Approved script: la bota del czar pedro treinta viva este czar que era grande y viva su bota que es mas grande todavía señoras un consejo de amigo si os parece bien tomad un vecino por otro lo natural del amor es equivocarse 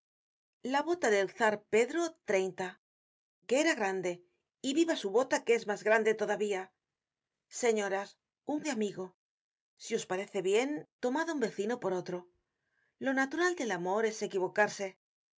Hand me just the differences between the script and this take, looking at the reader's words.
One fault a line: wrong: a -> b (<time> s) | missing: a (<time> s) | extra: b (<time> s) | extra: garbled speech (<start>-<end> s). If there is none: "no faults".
missing: viva este czar (2.7 s)
missing: consejo (8.6 s)